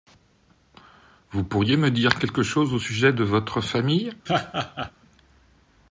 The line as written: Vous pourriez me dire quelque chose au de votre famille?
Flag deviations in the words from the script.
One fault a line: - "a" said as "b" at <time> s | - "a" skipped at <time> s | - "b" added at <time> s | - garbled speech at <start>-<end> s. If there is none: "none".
- "sujet" added at 2.8 s